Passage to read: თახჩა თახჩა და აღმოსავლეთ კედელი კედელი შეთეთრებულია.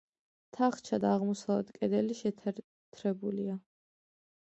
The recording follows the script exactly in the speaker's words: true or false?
false